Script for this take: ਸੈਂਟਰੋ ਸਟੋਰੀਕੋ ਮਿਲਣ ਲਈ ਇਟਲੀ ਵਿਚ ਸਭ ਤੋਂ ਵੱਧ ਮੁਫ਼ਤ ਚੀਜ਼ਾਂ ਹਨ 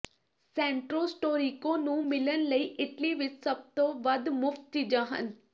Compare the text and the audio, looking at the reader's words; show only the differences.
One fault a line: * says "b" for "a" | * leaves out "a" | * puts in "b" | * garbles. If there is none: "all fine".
* puts in "ਨੂੰ"